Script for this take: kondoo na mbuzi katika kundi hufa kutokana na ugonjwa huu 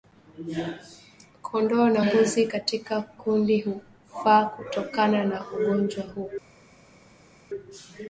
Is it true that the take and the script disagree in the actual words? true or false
false